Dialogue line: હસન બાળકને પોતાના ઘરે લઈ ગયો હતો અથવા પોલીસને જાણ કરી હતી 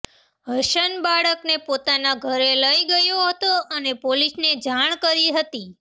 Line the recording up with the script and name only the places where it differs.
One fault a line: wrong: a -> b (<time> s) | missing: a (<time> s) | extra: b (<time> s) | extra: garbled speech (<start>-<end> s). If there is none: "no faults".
wrong: અથવા -> અને (3.7 s)